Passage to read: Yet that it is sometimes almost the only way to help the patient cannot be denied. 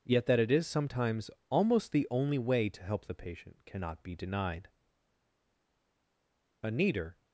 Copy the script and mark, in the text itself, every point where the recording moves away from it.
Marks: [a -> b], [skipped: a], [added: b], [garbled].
Yet that it is sometimes almost the only way to help the patient cannot be denied. [added: A neater]